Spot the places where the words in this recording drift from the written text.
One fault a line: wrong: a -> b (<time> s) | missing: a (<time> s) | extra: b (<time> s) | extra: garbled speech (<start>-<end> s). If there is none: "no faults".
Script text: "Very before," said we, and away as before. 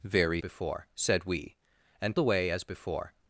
no faults